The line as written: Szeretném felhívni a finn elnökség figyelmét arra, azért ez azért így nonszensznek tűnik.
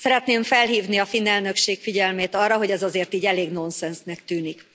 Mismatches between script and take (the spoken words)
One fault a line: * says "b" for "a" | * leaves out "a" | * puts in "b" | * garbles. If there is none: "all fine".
* says "hogy" for "azért"
* puts in "elég"